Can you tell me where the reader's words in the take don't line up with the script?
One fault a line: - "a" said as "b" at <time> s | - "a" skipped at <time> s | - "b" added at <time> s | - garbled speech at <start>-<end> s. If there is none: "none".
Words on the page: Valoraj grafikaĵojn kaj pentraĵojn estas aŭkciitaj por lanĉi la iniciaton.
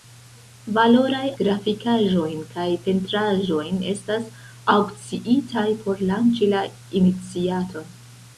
none